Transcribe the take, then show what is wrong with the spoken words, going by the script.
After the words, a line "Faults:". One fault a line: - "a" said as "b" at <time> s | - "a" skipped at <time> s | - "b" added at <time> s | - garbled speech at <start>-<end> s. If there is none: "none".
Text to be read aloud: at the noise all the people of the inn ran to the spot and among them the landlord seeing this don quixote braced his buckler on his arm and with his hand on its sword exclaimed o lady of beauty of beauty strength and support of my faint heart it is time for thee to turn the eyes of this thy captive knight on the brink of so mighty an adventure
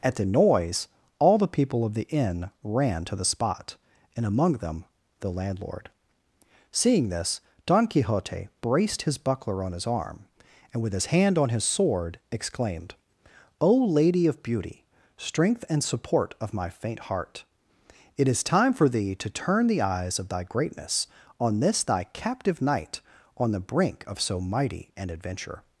at the noise all the people of the inn ran to the spot and among them the landlord seeing this don quixote braced his buckler on his arm and with his hand on his sword exclaimed o lady of beauty strength and support of my faint heart it is time for thee to turn the eyes of thy greatness on this thy captive knight on the brink of so mighty an adventure
Faults:
- "its" said as "his" at 11.5 s
- "of beauty" skipped at 14.8 s
- "thy greatness on" added at 20.3 s